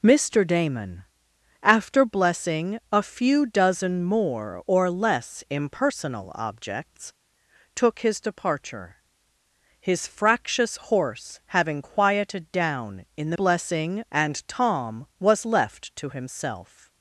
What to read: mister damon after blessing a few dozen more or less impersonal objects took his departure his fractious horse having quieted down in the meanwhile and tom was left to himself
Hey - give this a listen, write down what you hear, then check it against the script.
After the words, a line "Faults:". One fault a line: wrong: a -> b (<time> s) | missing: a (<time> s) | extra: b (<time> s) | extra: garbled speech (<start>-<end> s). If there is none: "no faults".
mister damon after blessing a few dozen more or less impersonal objects took his departure his fractious horse having quieted down in the blessing and tom was left to himself
Faults:
wrong: meanwhile -> blessing (13.3 s)